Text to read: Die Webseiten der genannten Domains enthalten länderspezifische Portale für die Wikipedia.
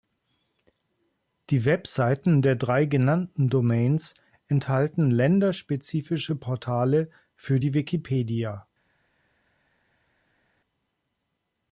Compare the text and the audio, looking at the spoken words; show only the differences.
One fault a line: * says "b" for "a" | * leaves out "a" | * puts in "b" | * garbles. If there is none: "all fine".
* puts in "drei"